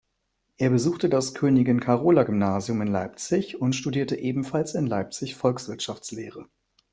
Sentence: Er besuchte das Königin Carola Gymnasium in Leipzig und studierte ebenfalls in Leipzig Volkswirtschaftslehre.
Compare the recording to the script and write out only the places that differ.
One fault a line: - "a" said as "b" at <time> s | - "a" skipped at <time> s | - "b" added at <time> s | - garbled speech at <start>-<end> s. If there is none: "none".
none